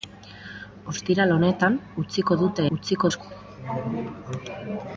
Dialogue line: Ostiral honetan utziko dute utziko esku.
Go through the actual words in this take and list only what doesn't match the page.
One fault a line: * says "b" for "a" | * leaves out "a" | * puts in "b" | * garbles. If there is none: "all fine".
all fine